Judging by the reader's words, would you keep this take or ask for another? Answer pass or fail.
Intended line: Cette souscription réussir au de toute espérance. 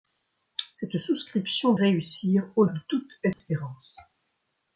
pass